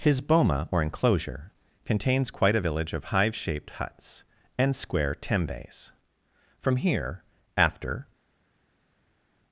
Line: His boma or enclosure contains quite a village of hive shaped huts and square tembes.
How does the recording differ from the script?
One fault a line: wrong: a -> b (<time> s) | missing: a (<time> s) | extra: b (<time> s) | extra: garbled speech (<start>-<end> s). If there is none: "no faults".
extra: From here after (6.6 s)